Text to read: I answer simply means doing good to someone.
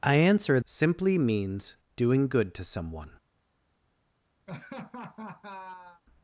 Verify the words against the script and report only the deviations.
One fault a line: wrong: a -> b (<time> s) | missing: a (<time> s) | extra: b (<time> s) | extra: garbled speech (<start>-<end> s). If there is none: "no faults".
no faults